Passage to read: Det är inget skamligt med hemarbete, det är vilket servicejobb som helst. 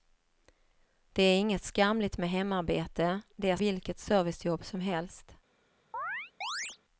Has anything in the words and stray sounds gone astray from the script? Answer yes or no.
yes